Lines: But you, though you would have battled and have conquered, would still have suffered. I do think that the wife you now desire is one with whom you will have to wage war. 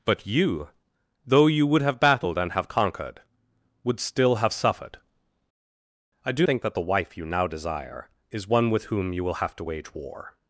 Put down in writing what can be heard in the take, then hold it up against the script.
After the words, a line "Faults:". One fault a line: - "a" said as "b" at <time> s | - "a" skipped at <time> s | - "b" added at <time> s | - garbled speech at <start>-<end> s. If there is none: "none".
But you, though you would have battled and have conquered, would still have suffered. I do think that the wife you now desire is one with whom you will have to wage war.
Faults:
none